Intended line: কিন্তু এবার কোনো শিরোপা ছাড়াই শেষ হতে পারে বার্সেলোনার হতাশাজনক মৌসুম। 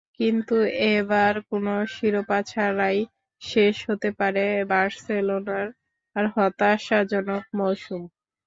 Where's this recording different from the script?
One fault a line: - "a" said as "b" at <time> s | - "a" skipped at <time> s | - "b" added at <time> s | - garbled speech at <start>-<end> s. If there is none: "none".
none